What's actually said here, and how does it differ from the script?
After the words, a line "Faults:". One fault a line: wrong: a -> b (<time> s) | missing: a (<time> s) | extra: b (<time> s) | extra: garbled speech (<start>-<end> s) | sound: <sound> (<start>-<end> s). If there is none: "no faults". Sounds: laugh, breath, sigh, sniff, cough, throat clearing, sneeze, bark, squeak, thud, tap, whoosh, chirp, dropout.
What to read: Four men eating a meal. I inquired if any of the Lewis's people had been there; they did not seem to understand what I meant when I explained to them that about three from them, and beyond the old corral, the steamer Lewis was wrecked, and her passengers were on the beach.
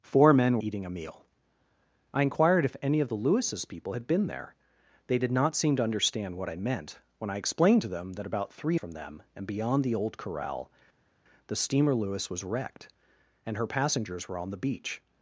Four men eating a meal. I inquired if any of the Lewis's people had been there; they did not seem to understand what I meant when I explained to them that about three from them, and beyond the old corral, the steamer Lewis was wrecked, and her passengers were on the beach.
Faults:
no faults